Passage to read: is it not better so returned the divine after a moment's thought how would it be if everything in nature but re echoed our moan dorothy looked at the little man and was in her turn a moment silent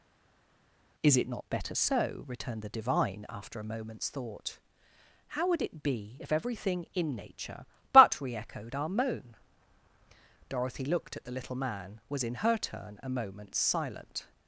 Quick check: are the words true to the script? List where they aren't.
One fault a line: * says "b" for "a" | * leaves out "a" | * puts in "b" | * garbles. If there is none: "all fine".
* leaves out "and"